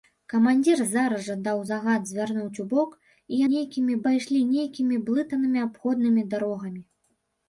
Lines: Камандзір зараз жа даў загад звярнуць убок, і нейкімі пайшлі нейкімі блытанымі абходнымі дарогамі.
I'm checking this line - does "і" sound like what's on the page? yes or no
yes